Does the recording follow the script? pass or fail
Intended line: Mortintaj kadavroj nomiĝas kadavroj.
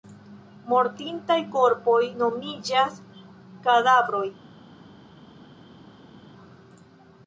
fail